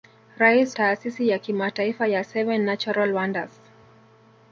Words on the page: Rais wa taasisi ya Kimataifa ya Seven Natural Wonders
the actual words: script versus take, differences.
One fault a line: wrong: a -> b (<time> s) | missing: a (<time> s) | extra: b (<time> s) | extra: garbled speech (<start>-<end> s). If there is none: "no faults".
missing: wa (0.8 s)